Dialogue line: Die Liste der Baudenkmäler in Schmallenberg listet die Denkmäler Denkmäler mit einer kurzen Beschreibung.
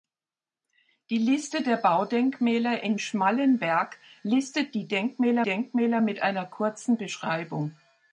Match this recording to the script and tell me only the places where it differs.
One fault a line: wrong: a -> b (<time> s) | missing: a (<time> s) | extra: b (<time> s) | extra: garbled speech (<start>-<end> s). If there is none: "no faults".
no faults